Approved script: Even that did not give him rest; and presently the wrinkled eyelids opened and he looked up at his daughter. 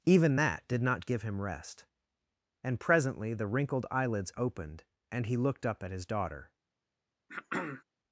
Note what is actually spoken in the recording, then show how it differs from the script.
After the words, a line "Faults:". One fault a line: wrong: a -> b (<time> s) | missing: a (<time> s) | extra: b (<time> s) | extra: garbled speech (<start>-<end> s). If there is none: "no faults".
Even that did not give him rest; and presently the wrinkled eyelids opened and he looked up at his daughter.
Faults:
no faults